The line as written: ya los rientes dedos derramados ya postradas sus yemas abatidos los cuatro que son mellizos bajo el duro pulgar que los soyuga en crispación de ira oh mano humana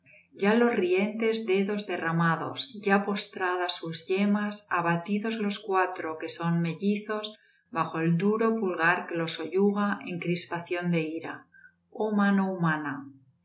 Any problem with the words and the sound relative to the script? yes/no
no